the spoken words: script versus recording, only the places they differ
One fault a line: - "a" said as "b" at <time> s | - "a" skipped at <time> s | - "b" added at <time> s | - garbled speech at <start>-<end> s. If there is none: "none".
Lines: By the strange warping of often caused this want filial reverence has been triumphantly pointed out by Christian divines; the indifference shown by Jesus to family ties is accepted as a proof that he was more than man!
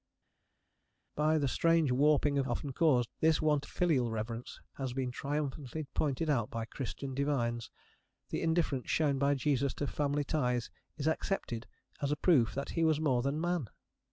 none